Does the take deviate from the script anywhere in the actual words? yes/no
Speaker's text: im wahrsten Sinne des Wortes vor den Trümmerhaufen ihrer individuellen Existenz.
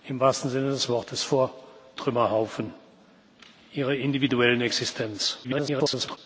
yes